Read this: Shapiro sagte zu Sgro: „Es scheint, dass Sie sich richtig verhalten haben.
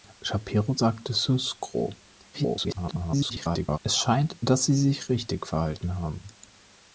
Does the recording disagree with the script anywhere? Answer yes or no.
yes